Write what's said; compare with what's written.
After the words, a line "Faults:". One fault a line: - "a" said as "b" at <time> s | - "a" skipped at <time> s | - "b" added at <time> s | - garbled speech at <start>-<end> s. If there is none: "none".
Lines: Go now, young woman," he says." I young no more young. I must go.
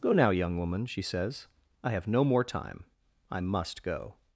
Go now, young woman," she says." I have no more time. I must go.
Faults:
- "he" said as "she" at 0.9 s
- "young" said as "have" at 1.9 s
- "young" said as "time" at 2.4 s